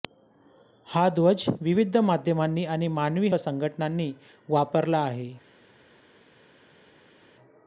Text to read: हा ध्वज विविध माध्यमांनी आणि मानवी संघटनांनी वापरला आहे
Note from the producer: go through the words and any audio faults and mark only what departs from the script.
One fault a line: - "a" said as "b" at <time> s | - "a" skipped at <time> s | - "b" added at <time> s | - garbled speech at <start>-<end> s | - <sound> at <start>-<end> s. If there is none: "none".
none